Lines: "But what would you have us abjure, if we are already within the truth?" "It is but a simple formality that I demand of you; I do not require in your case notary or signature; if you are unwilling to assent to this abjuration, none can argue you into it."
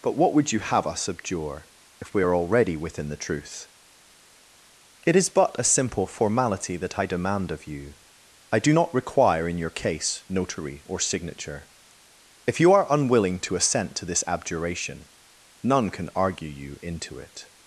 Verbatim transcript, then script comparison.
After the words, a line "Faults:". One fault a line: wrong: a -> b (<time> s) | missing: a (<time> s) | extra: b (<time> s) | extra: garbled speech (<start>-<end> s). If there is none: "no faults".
"But what would you have us abjure, if we are already within the truth?" "It is but a simple formality that I demand of you; I do not require in your case notary or signature; if you are unwilling to assent to this abjuration, none can argue you into it."
Faults:
no faults